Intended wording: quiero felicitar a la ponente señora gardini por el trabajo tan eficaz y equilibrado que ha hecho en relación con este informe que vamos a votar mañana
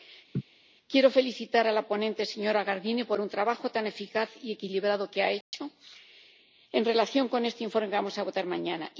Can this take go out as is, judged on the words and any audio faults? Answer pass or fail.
fail